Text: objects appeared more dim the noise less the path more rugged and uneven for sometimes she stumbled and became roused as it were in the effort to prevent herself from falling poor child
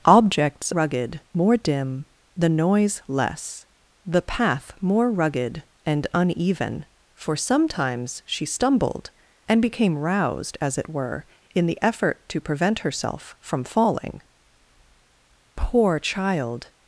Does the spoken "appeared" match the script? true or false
false